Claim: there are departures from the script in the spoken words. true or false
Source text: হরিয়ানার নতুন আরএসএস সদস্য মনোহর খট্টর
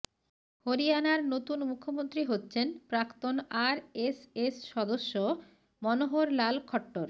true